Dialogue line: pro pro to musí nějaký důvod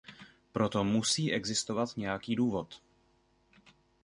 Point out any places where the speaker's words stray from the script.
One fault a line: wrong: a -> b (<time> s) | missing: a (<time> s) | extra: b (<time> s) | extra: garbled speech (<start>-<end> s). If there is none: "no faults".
missing: pro (0.7 s)
extra: existovat (1.3 s)